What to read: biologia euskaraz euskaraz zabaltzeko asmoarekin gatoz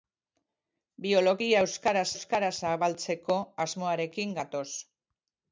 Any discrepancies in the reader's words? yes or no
no